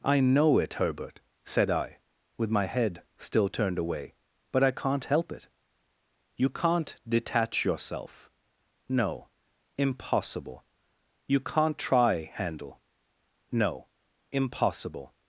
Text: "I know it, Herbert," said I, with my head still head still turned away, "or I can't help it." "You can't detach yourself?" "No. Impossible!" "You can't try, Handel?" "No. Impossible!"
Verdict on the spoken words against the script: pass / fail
fail